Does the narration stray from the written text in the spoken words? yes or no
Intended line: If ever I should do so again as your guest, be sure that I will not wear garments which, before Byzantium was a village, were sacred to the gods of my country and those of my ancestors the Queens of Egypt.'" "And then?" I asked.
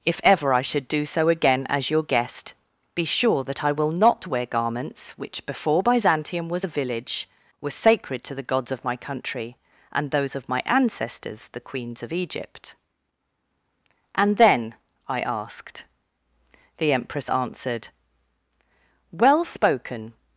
yes